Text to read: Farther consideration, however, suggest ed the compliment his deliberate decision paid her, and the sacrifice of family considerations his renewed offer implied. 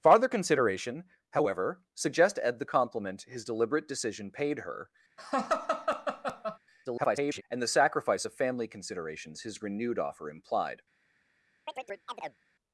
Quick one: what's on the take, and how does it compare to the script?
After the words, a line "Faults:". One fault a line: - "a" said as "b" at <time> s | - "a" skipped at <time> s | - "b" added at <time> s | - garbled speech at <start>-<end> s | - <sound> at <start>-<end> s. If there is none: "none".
Farther consideration, however, suggest ed the compliment his deliberate decision paid her, [garbled] and the sacrifice of family considerations his renewed offer implied.
Faults:
- laugh at 5.2-6.6 s
- garbled speech at 6.8-7.4 s
- chirp at 11.7-12.4 s